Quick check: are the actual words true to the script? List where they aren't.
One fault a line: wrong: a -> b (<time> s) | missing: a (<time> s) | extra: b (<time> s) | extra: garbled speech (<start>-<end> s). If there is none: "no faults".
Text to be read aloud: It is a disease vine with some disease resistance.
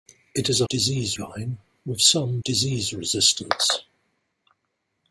no faults